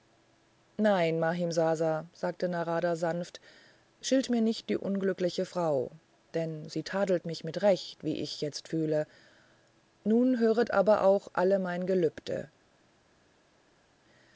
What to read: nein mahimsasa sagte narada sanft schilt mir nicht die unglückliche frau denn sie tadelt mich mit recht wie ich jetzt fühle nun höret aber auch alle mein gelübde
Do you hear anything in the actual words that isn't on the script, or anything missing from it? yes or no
no